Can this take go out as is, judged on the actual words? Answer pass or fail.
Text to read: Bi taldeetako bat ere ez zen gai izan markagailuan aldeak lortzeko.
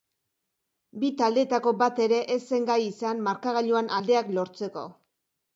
pass